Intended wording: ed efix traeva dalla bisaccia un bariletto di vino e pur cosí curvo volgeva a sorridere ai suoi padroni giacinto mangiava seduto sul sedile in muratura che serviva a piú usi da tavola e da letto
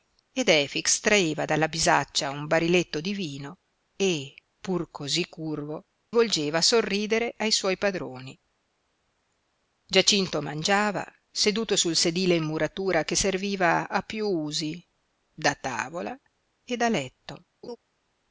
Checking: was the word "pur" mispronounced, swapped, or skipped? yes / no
no